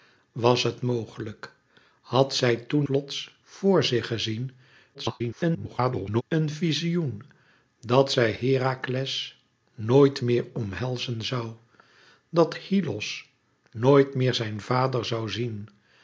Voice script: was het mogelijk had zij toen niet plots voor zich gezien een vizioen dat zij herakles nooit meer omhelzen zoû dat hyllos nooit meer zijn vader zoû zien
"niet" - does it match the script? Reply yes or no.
no